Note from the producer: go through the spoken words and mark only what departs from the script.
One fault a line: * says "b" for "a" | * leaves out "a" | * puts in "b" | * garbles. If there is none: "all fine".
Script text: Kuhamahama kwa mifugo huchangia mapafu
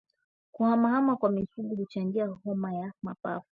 * puts in "homa ya"